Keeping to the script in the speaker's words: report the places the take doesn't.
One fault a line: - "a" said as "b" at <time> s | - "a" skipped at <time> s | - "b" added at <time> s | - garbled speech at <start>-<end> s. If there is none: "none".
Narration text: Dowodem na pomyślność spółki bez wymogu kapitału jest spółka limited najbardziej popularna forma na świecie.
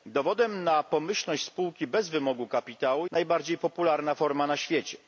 - "jest spółka limited" skipped at 3.1 s